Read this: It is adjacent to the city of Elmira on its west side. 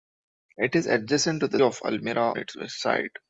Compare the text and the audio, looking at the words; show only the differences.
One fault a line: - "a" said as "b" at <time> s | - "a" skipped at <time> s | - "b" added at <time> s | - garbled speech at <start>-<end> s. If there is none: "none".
- "city" skipped at 1.6 s
- "on" skipped at 2.3 s